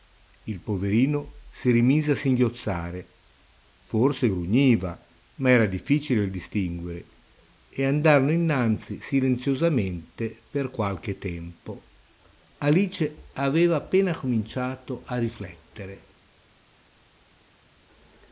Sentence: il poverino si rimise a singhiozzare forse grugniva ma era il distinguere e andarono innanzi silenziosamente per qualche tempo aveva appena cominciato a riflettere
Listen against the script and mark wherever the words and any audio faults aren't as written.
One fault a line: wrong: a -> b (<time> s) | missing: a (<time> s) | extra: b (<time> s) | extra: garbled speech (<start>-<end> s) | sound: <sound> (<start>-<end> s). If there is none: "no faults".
extra: difficile (5.6 s)
extra: alice (12.6 s)